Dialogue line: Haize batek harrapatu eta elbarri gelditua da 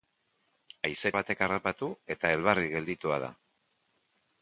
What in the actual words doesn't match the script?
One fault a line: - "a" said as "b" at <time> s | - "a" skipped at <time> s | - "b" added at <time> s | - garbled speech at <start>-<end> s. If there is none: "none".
none